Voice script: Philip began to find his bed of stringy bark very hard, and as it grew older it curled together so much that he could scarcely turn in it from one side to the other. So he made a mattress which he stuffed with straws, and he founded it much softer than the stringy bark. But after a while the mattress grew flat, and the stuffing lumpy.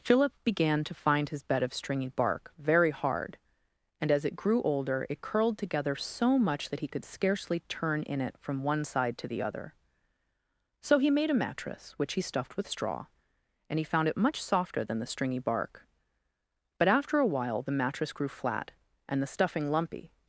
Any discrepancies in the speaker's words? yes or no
yes